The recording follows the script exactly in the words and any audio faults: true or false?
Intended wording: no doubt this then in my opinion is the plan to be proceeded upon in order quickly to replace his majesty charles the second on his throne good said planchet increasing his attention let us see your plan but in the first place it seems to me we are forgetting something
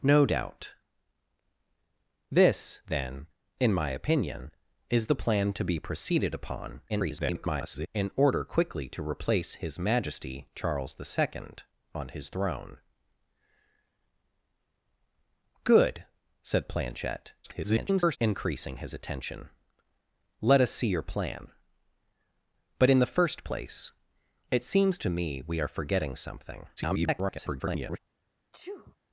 false